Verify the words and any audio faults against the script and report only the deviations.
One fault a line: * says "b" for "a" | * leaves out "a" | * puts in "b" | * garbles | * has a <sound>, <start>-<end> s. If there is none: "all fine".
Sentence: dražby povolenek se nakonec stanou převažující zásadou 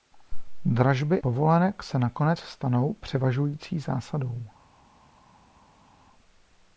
all fine